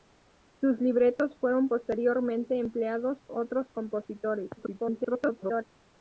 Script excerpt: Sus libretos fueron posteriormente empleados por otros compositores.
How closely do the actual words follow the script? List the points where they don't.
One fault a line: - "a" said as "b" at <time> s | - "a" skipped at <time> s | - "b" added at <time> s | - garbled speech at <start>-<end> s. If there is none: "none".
- "por" skipped at 3.2 s
- garbled speech at 4.6-5.6 s